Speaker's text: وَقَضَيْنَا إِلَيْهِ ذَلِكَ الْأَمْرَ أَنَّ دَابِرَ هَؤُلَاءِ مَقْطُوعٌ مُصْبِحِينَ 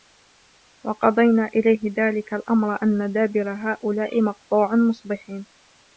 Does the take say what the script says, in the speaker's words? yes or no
yes